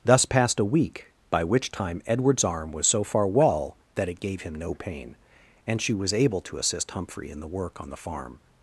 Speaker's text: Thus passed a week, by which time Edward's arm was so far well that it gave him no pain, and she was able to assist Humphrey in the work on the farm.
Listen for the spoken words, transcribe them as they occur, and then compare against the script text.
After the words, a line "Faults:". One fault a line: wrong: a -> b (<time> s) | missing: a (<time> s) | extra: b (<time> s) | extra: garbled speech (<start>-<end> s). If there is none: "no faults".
Thus passed a week, by which time Edward's arm was so far well that it gave him no pain, and she was able to assist Humphrey in the work on the farm.
Faults:
no faults